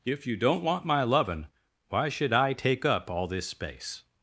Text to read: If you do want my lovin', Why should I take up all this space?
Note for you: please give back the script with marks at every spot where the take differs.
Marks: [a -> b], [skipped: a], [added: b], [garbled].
If you [do -> don't] want my lovin', Why should I take up all this space?